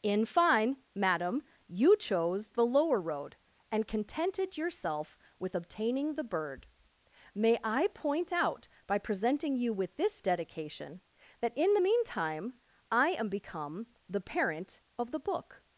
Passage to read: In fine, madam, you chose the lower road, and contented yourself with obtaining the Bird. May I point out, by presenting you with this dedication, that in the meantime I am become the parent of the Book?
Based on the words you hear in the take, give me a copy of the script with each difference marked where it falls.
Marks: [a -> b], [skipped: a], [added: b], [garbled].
In fine, madam, you chose the lower road, and contented yourself with obtaining the Bird. May I point out, by presenting you with this dedication, that in the meantime I am become the parent of the Book?